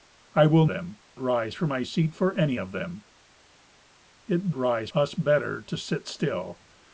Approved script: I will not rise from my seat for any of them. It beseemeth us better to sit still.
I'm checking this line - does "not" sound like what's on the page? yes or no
no